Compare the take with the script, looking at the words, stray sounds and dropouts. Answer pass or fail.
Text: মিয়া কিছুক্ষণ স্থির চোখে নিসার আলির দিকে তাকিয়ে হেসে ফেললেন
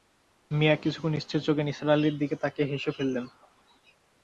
pass